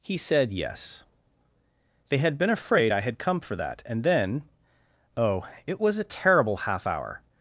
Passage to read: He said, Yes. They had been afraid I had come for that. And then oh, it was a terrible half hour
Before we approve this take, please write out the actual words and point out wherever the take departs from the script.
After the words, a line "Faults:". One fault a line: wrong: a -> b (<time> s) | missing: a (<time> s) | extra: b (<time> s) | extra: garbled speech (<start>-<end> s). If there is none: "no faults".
He said, Yes. They had been afraid I had come for that. And then oh, it was a terrible half hour
Faults:
no faults